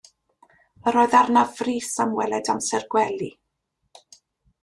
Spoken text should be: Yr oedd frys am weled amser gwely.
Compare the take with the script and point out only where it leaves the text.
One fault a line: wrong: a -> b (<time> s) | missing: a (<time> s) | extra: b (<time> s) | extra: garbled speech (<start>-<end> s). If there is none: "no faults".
extra: arnaf (1.2 s)